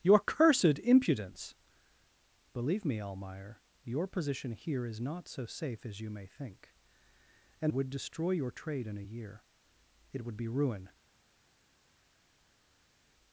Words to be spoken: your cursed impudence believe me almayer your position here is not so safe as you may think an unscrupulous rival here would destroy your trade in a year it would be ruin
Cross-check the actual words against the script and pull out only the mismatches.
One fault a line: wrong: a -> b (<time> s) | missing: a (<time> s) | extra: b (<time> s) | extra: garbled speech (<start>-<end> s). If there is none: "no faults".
missing: unscrupulous rival here (7.7 s)